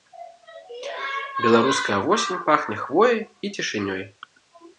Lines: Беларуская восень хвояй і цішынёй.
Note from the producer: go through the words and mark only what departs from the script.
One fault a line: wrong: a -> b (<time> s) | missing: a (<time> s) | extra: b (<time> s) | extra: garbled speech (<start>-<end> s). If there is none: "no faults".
extra: пахне (2.5 s)